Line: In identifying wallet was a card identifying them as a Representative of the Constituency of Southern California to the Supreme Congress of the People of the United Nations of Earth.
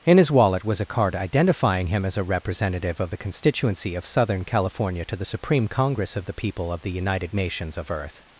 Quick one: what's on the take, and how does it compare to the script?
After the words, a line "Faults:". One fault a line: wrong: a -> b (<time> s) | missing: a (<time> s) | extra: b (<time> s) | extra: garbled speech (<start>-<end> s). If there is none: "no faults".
In his wallet was a card identifying him as a Representative of the Constituency of Southern California to the Supreme Congress of the People of the United Nations of Earth.
Faults:
wrong: identifying -> his (0.2 s)
wrong: them -> him (1.9 s)